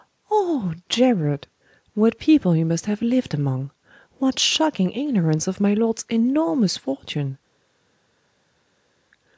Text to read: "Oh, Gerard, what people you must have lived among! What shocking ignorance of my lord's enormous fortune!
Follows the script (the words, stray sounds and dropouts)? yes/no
yes